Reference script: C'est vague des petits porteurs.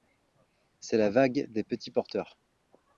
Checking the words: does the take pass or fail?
fail